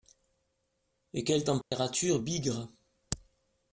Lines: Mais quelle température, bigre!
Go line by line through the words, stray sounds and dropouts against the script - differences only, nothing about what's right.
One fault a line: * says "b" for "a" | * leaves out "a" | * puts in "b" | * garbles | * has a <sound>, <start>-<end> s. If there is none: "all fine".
* says "Et" for "Mais"
* has a dropout, 1.6-1.7 s